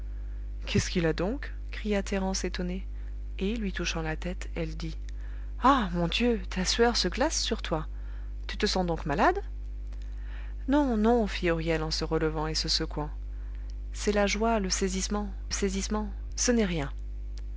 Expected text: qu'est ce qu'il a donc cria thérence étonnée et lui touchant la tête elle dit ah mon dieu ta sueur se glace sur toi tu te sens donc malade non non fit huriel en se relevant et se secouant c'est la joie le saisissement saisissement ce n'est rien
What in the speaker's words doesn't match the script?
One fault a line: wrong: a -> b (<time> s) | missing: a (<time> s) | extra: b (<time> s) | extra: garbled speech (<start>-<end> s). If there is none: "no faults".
no faults